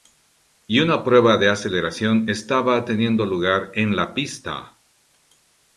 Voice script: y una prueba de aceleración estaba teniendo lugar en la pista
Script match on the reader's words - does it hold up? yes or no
yes